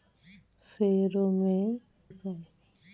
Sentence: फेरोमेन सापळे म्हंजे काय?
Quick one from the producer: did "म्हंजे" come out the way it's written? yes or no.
no